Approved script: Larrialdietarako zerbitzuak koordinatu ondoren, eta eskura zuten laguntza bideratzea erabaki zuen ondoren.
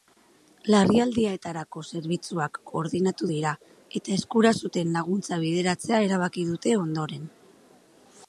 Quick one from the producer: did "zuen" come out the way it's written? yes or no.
no